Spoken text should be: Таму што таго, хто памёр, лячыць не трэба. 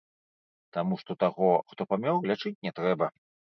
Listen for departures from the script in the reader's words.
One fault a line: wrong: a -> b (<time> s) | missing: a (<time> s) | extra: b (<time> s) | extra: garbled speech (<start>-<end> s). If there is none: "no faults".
no faults